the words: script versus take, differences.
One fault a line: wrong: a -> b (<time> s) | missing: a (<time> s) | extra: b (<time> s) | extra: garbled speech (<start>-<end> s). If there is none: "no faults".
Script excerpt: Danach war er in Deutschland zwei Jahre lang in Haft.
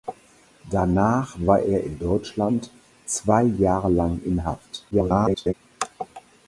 extra: garbled speech (4.9-5.5 s)